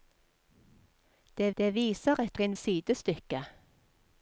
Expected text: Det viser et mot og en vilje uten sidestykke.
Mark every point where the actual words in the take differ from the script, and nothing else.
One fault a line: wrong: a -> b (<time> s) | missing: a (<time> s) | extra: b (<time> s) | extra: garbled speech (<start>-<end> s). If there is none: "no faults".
extra: det (1.6 s)
missing: mot (2.4 s)
missing: vilje uten (2.6 s)